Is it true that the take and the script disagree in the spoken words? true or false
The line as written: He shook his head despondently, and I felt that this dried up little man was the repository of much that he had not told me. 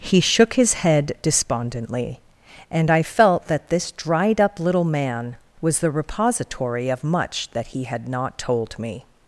false